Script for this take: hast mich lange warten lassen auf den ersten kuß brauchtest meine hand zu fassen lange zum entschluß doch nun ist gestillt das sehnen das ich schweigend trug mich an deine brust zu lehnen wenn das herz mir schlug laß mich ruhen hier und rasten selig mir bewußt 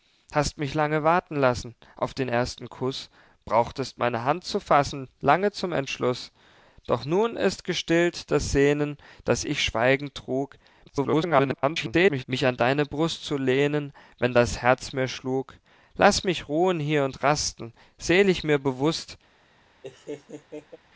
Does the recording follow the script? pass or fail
fail